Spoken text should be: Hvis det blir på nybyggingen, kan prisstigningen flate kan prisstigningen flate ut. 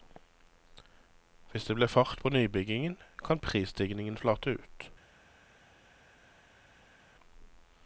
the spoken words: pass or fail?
fail